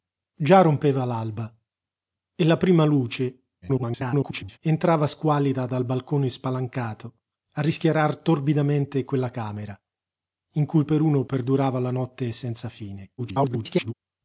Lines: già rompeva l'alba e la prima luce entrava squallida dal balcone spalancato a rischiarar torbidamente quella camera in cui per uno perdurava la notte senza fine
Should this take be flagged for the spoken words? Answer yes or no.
yes